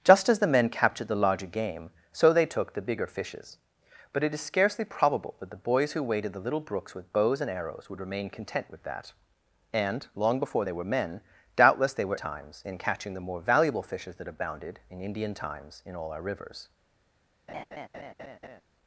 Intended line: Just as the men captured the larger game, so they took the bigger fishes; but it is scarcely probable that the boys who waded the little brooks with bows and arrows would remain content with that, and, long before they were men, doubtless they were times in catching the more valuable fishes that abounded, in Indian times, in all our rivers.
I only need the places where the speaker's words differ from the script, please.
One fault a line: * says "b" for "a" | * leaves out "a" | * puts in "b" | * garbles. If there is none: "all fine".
all fine